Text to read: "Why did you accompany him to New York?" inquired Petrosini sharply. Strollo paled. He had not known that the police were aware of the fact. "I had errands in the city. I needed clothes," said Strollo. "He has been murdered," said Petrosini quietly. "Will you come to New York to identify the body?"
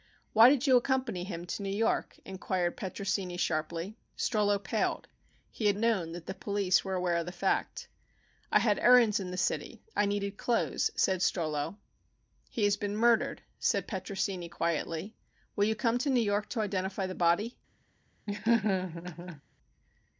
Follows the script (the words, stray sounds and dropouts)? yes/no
no